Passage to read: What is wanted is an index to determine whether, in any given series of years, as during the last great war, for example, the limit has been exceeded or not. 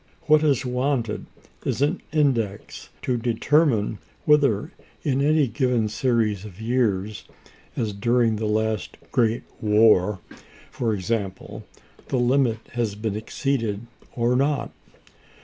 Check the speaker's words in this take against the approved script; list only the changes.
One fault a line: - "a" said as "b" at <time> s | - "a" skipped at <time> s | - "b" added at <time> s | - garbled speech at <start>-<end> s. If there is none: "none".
none